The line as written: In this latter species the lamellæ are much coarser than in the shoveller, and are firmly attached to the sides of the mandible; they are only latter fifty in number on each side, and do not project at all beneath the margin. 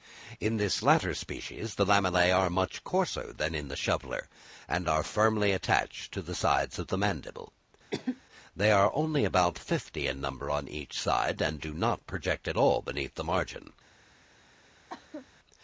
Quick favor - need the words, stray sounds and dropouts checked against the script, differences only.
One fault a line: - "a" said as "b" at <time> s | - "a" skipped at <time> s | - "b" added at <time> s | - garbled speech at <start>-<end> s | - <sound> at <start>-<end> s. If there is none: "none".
- cough at 7.9-8.2 s
- "latter" said as "about" at 9.3 s
- cough at 14.9-15.3 s